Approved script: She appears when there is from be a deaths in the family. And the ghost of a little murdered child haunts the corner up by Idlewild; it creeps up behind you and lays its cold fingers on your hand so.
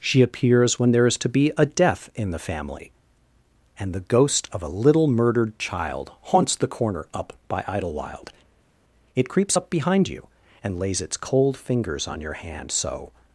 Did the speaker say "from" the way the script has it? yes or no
no